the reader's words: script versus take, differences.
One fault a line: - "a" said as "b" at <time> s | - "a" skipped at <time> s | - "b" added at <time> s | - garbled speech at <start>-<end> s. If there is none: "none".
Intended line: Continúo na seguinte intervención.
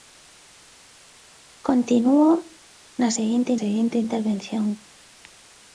- "seguinte" added at 3.6 s